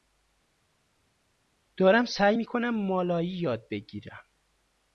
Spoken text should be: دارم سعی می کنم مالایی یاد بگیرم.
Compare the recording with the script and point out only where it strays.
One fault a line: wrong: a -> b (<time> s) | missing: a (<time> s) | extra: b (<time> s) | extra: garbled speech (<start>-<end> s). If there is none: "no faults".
no faults